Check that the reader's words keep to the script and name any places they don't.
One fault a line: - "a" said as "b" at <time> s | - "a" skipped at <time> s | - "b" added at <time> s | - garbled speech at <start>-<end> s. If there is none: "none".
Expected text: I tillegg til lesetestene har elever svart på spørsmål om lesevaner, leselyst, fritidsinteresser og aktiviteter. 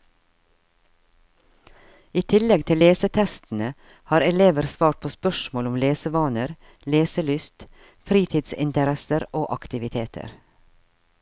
none